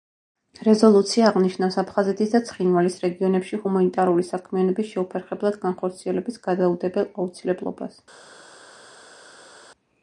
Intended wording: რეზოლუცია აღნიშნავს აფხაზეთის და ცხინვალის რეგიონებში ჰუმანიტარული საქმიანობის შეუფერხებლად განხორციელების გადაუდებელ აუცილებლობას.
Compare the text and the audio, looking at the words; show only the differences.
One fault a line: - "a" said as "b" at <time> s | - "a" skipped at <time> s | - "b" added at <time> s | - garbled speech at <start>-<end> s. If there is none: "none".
none